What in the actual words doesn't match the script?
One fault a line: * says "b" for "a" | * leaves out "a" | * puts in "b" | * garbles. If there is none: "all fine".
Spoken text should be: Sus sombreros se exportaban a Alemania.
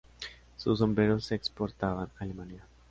all fine